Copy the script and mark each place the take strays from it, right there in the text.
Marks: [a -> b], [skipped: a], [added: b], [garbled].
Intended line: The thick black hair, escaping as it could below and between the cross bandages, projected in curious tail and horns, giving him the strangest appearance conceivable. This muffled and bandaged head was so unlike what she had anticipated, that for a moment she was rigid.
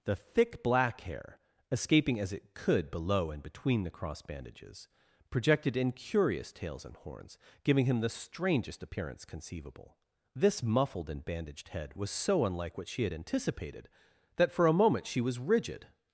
The thick black hair, escaping as it could below and between the cross bandages, projected in curious [tail -> tails] and horns, giving him the strangest appearance conceivable. This muffled and bandaged head was so unlike what she had anticipated, that for a moment she was rigid.